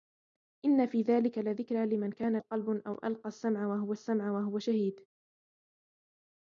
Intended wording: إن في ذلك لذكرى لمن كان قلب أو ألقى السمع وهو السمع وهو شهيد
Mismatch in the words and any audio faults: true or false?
false